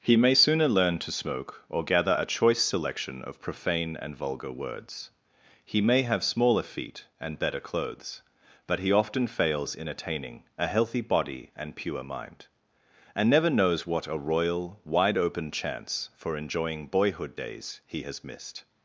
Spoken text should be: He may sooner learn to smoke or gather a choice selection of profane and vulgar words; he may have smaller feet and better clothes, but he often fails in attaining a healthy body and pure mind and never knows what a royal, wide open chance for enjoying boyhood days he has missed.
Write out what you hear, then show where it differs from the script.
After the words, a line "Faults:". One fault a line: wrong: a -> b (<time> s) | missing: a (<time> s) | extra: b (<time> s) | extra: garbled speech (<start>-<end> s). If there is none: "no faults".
He may sooner learn to smoke or gather a choice selection of profane and vulgar words; he may have smaller feet and better clothes, but he often fails in attaining a healthy body and pure mind and never knows what a royal, wide open chance for enjoying boyhood days he has missed.
Faults:
no faults